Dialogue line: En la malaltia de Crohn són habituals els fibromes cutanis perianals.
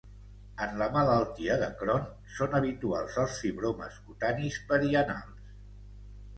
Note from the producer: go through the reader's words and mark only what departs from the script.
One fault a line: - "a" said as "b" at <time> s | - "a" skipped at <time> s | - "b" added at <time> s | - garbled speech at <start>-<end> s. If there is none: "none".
none